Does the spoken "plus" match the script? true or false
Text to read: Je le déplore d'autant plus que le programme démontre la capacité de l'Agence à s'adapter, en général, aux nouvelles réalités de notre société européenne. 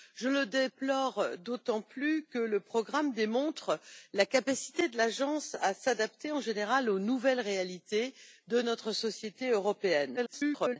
true